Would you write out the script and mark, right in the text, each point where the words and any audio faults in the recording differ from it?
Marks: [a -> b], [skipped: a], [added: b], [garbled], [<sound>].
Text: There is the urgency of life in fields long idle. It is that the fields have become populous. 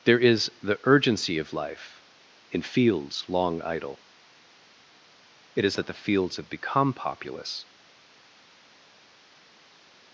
There is the urgency of life in fields long idle. It is that the fields have become populous.